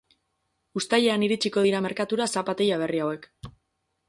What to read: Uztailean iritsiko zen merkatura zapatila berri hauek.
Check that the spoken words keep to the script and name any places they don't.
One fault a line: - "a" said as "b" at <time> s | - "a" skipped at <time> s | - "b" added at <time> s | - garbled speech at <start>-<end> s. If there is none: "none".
- "zen" said as "dira" at 1.7 s